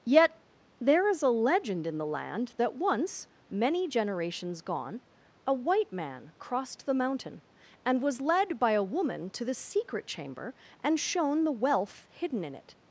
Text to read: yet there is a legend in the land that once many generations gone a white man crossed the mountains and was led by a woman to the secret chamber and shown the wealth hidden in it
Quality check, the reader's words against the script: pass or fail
fail